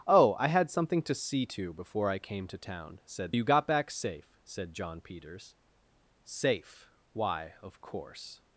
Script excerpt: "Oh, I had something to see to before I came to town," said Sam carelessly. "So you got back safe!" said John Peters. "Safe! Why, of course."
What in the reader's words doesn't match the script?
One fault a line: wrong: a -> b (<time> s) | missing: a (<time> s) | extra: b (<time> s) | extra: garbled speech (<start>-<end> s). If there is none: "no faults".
missing: Sam carelessly So (3.4 s)